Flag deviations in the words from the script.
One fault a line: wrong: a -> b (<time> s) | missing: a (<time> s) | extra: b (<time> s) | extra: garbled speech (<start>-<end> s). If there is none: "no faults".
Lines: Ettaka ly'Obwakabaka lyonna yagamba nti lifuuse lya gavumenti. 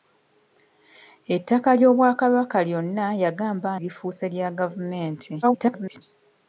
missing: nti (3.7 s)
extra: garbled speech (5.4-6.0 s)